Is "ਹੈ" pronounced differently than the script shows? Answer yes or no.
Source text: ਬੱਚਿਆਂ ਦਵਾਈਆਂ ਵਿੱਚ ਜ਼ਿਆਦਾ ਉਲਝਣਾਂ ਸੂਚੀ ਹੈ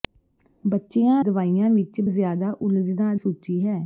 no